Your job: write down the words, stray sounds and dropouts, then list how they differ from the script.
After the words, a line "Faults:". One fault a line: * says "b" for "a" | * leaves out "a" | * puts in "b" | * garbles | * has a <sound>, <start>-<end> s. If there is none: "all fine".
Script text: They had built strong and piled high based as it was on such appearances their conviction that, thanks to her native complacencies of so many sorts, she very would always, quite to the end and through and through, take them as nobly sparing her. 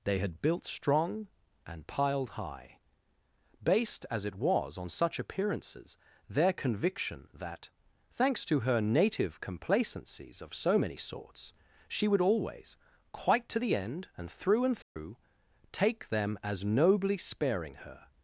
They had built strong and piled high based as it was on such appearances their conviction that, thanks to her native complacencies of so many sorts, she would always, quite to the end and through and through, take them as nobly sparing her.
Faults:
* leaves out "very"
* has a dropout, 14.8-15.0 s